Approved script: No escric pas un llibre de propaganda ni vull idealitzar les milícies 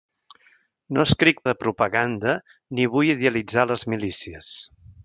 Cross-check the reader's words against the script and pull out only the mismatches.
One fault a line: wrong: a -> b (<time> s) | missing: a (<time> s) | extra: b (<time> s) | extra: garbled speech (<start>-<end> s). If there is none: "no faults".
missing: pas un llibre (1.4 s)